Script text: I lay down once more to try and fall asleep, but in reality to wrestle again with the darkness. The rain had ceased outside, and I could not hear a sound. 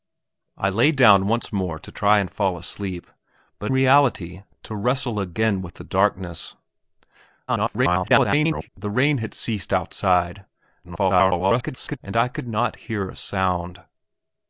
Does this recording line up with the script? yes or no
no